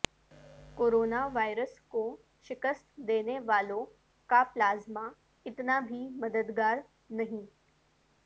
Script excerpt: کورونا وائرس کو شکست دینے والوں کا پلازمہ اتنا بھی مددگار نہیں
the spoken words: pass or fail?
pass